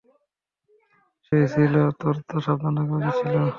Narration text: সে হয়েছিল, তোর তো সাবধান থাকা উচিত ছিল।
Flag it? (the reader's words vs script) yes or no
no